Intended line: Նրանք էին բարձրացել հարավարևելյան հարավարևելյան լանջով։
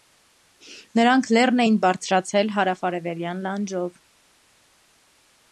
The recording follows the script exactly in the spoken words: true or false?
false